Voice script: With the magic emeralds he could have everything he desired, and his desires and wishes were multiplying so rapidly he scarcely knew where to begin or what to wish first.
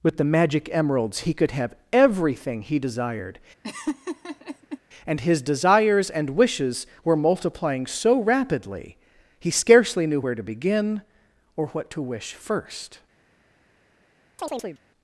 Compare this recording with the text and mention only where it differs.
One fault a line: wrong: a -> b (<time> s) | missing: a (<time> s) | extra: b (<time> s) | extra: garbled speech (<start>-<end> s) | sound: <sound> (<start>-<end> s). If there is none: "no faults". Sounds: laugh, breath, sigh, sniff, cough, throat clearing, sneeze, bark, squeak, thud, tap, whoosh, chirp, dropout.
sound: laugh (3.6-4.8 s)
sound: chirp (14.4-14.8 s)